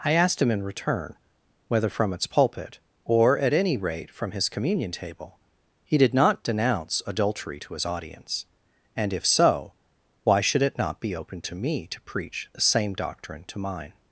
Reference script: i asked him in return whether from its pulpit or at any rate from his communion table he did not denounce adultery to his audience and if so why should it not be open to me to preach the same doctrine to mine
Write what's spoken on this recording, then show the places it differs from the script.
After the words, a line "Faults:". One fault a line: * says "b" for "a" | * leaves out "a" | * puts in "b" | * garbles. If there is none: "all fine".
i asked him in return whether from its pulpit or at any rate from his communion table he did not denounce adultery to his audience and if so why should it not be open to me to preach the same doctrine to mine
Faults:
all fine